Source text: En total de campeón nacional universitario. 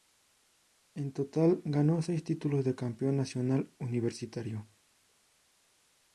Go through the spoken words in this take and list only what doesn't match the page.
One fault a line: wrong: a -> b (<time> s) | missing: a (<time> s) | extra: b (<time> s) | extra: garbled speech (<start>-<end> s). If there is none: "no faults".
extra: ganó seis títulos (1.6 s)